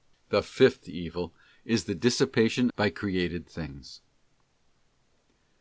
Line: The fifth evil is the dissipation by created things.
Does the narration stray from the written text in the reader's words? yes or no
no